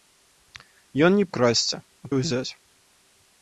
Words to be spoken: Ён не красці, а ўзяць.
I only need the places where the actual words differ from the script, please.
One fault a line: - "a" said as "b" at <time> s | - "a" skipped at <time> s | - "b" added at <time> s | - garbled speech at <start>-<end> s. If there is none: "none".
none